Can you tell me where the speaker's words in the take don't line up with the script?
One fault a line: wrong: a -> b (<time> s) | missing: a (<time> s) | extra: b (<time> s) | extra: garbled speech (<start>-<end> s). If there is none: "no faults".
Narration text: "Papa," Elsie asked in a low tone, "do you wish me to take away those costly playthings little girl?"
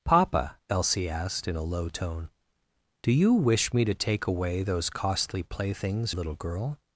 no faults